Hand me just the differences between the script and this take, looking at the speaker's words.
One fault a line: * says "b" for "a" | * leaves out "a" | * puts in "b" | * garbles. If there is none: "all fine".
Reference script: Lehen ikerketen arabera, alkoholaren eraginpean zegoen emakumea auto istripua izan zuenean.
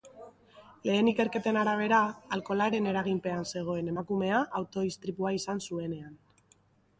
all fine